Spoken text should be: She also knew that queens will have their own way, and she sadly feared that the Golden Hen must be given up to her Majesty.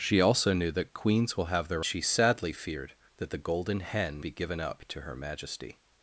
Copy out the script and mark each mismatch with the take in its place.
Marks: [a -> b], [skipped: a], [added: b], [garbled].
She also knew that queens will have their [skipped: own way, and] she sadly feared that the Golden Hen [skipped: must] be given up to her Majesty.